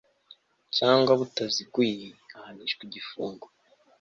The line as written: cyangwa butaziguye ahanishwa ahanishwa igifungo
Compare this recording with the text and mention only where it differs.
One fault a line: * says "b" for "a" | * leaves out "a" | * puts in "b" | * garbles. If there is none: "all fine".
* leaves out "ahanishwa"